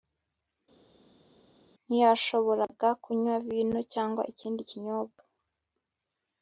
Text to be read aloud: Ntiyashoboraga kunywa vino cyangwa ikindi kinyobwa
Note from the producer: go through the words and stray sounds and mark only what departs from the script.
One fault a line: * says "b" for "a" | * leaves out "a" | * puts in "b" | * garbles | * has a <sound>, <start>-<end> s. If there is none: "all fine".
all fine